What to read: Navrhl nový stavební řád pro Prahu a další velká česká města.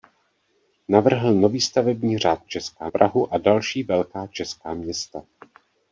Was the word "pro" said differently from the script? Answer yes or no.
yes